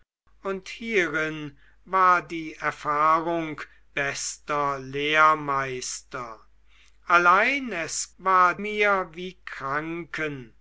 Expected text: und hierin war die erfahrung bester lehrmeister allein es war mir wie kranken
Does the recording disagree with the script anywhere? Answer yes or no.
no